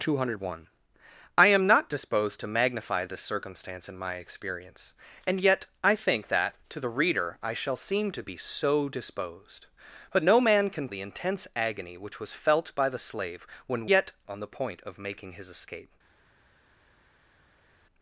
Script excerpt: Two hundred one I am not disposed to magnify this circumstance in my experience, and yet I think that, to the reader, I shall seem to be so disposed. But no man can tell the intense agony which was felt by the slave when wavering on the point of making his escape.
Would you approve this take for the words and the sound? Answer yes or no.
no